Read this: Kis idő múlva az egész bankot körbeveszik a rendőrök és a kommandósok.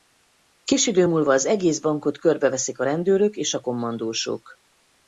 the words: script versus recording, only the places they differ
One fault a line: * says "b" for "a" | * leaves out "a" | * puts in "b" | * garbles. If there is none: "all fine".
all fine